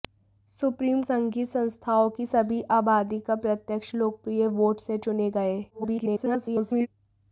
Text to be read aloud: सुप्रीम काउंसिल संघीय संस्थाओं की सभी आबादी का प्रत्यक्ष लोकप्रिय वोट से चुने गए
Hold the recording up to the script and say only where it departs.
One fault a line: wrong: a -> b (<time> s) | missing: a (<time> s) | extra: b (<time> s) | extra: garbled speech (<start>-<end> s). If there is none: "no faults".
missing: काउंसिल (1.0 s)
extra: garbled speech (5.7-6.9 s)